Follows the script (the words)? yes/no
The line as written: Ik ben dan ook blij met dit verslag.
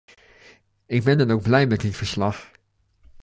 yes